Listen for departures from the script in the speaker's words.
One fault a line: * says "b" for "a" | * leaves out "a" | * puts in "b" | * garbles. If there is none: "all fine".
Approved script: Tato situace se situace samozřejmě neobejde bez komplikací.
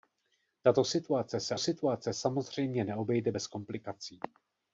all fine